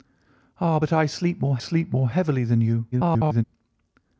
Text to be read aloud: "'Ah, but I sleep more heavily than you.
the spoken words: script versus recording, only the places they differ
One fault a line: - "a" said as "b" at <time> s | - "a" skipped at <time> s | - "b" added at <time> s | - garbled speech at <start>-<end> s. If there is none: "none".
- "sleep more" added at 1.6 s
- garbled speech at 2.9-3.4 s